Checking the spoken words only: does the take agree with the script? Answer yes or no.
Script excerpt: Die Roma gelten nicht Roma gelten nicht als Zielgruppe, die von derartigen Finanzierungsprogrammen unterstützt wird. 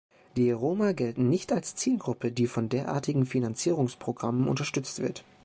no